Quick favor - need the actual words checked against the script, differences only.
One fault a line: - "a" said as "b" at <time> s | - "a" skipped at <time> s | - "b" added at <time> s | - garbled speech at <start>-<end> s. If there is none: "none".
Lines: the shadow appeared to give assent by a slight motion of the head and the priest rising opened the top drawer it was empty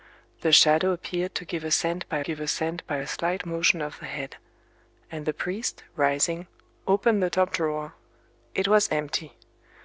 - "give assent by" added at 2.2 s